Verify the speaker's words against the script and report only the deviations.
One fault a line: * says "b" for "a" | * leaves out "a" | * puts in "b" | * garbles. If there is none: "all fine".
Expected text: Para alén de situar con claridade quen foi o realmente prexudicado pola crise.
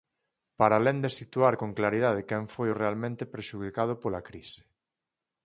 all fine